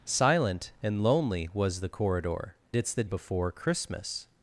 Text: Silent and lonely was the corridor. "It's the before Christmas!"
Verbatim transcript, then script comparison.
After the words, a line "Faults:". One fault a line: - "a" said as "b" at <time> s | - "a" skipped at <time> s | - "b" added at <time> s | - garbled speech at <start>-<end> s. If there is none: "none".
Silent and lonely was the corridor. "It's the before Christmas!"
Faults:
none